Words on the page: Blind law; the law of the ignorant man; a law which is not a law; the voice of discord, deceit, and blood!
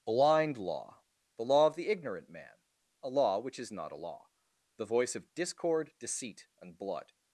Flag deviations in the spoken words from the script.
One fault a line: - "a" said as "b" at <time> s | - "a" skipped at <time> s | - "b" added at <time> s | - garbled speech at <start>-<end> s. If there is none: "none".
none